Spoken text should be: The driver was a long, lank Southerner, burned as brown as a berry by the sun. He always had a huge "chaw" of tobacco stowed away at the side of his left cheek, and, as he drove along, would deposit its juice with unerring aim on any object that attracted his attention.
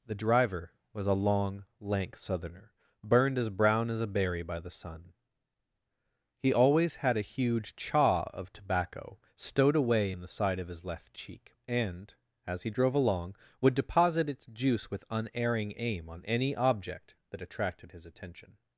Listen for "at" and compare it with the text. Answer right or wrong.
wrong